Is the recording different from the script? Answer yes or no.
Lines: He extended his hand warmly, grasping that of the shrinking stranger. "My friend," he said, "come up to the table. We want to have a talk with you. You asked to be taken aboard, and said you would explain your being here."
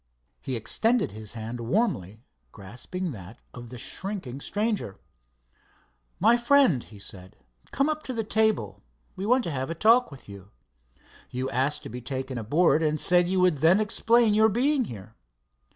yes